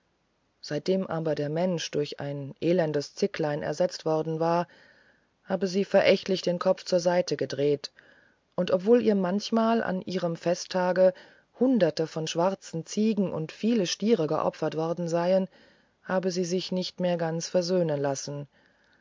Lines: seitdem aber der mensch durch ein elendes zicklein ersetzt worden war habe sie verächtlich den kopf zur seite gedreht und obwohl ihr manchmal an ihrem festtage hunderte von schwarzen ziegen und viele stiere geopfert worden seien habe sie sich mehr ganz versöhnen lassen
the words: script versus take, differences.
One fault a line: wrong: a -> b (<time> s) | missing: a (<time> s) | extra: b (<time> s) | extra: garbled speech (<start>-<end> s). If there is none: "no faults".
extra: nicht (16.7 s)